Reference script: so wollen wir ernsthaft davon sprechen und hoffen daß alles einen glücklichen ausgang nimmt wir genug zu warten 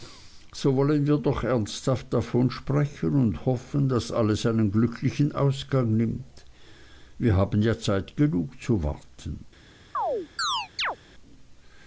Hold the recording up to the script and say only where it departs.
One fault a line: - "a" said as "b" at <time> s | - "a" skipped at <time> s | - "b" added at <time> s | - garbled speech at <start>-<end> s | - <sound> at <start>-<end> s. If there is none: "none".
- "doch" added at 1.2 s
- "haben ja zeit" added at 7.3 s
- chirp at 9.9-11.0 s